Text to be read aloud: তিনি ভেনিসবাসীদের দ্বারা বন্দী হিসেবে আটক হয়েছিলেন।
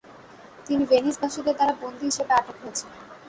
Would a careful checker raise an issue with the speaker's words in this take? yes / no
no